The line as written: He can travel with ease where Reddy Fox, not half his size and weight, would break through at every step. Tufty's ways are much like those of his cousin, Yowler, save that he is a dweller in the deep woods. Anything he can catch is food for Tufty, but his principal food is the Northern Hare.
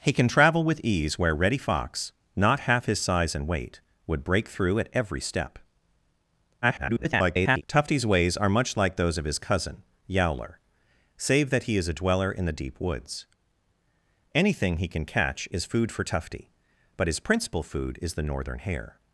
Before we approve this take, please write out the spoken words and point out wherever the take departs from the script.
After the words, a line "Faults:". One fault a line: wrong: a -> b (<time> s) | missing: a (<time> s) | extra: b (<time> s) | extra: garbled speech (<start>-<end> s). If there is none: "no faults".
He can travel with ease where Reddy Fox, not half his size and weight, would break through at every step. [garbled] Tufty's ways are much like those of his cousin, Yowler, save that he is a dweller in the deep woods. Anything he can catch is food for Tufty, but his principal food is the Northern Hare.
Faults:
extra: garbled speech (6.6-7.6 s)